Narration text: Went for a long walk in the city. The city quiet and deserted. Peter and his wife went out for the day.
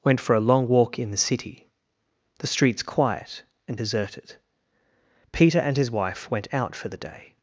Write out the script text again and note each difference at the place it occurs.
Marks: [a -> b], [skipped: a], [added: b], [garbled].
Went for a long walk in the city. The [city -> streets] quiet and deserted. Peter and his wife went out for the day.